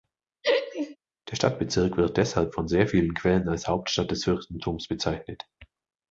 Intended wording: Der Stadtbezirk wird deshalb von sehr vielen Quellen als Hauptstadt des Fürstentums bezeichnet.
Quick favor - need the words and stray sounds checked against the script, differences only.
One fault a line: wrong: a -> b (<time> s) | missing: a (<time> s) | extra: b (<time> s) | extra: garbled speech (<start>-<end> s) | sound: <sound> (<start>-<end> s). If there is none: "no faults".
sound: laugh (0.4-1.0 s)